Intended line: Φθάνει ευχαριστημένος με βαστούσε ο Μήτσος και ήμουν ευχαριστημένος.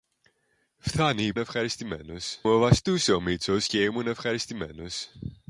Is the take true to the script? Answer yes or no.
yes